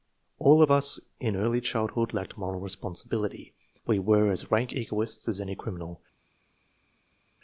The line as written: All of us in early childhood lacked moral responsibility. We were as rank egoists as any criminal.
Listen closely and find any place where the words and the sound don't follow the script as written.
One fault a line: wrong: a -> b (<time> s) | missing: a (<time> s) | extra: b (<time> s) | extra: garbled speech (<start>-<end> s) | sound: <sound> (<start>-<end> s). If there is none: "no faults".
no faults